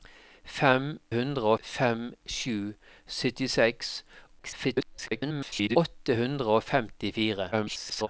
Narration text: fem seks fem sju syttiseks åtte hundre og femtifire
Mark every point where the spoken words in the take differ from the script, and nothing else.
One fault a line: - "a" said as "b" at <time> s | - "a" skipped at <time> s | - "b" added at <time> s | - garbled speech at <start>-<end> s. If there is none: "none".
- "seks" said as "hundre" at 1.2 s
- garbled speech at 4.4-5.8 s
- garbled speech at 7.5-8.1 s